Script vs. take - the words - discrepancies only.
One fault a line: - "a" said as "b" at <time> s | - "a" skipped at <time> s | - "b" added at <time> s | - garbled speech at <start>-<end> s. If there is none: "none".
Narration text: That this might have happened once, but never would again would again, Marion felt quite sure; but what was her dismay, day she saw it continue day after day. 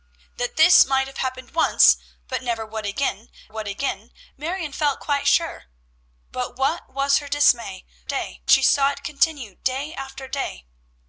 none